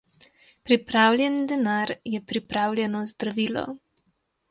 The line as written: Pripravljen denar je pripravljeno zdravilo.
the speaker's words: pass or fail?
pass